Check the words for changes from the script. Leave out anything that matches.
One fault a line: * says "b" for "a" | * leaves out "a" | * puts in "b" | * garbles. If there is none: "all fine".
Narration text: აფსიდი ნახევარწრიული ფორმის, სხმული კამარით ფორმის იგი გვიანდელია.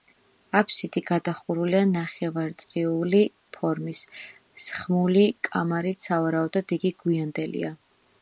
* puts in "გადახურულია"
* says "სავარაუდოდ" for "ფორმის"